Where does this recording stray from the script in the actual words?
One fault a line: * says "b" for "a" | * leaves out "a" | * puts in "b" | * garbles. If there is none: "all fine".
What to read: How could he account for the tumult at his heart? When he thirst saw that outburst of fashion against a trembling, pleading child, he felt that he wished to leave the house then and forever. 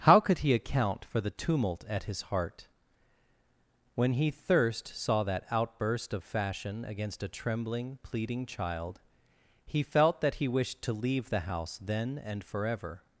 all fine